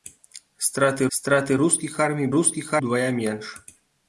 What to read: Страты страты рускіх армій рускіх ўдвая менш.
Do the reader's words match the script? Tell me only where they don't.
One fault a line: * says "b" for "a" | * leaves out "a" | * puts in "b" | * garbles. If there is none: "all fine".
all fine